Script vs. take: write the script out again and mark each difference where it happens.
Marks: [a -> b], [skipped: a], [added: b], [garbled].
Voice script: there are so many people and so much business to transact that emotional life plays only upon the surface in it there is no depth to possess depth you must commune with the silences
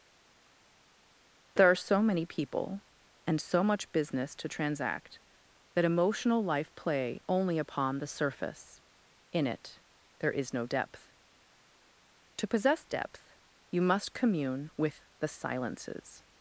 there are so many people and so much business to transact that emotional life [plays -> play] only upon the surface in it there is no depth to possess depth you must commune with the silences